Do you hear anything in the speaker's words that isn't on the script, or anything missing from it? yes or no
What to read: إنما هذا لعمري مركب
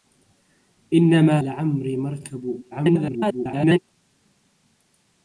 yes